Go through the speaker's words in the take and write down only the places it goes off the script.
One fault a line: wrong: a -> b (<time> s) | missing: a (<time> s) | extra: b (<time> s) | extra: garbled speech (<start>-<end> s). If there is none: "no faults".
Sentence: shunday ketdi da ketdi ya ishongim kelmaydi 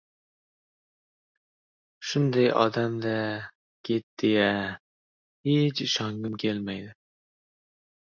wrong: ketdi -> odam (2.6 s)
extra: hech (5.5 s)